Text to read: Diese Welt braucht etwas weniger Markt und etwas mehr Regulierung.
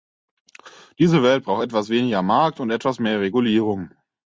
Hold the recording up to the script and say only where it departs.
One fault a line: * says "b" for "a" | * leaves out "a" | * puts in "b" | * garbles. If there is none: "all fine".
all fine